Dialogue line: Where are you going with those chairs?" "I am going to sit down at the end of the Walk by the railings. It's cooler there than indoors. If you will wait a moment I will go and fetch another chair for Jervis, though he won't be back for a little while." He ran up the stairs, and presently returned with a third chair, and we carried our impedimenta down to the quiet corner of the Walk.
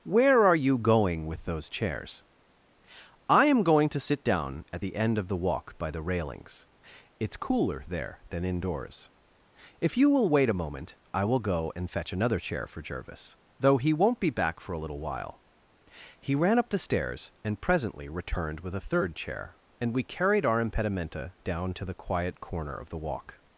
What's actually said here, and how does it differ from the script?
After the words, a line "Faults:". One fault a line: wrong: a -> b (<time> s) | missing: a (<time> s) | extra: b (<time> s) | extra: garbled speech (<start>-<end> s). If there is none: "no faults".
Where are you going with those chairs?" "I am going to sit down at the end of the Walk by the railings. It's cooler there than indoors. If you will wait a moment I will go and fetch another chair for Jervis, though he won't be back for a little while." He ran up the stairs, and presently returned with a third chair, and we carried our impedimenta down to the quiet corner of the Walk.
Faults:
no faults